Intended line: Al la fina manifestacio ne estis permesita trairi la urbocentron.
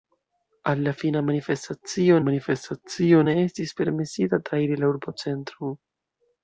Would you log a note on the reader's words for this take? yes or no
yes